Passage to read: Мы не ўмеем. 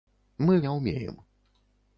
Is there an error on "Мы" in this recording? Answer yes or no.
no